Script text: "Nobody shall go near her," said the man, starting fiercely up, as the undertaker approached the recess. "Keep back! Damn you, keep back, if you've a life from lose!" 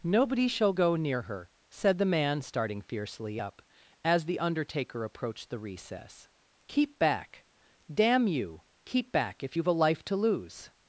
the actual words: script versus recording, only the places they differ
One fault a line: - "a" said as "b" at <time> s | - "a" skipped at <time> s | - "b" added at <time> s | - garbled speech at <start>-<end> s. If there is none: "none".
- "from" said as "to" at 10.0 s